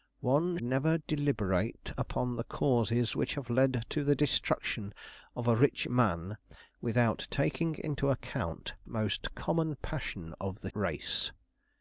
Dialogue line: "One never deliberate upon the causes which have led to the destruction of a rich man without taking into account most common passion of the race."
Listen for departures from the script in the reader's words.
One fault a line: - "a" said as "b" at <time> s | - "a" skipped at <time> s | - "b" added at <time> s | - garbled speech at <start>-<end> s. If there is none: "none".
none